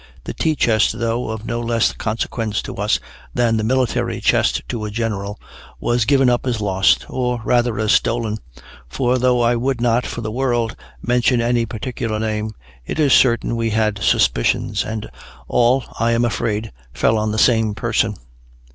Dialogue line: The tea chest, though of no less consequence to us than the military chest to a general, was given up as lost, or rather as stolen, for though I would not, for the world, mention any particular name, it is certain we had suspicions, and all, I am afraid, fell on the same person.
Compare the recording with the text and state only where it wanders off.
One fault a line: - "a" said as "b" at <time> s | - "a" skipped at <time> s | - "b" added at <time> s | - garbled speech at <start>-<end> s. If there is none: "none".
none